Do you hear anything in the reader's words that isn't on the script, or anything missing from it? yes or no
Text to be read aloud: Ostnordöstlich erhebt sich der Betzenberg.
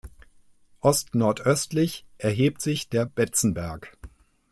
no